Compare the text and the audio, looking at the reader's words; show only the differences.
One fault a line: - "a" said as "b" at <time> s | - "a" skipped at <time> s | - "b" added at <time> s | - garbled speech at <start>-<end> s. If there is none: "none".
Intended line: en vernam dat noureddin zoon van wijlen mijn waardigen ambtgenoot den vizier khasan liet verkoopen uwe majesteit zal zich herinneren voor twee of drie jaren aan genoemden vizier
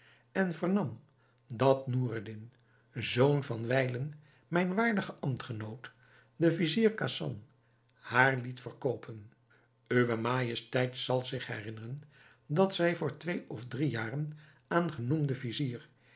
- "haar" added at 7.9 s
- "dat zij" added at 12.5 s